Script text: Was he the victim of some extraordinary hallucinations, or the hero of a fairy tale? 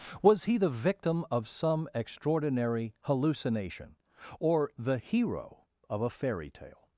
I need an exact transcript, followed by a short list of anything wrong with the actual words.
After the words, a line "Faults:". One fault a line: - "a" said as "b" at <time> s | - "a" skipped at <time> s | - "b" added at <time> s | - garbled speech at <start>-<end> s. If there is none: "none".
Was he the victim of some extraordinary hallucination, or the hero of a fairy tale?
Faults:
- "hallucinations" said as "hallucination" at 3.0 s